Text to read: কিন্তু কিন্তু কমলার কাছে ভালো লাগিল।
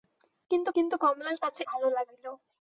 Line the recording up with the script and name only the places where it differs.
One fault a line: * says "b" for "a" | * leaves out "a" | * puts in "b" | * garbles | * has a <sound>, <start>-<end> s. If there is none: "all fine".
all fine